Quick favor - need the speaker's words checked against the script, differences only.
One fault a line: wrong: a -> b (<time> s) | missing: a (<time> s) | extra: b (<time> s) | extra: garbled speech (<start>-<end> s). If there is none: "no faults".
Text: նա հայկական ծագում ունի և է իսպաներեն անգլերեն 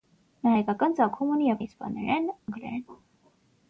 no faults